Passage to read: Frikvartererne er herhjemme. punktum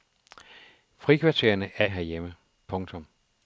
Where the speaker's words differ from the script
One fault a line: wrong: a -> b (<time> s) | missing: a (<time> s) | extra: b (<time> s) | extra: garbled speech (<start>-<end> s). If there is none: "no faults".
no faults